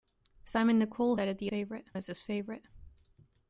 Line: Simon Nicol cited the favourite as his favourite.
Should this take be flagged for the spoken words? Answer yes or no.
no